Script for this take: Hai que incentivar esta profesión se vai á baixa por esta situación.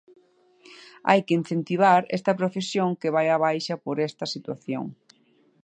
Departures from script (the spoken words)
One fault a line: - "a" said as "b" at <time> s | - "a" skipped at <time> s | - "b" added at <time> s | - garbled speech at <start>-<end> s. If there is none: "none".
- "se" said as "que" at 3.0 s